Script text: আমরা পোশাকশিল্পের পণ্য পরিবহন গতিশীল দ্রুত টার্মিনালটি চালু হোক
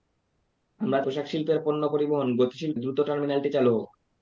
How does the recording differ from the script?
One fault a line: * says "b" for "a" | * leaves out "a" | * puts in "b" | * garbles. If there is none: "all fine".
all fine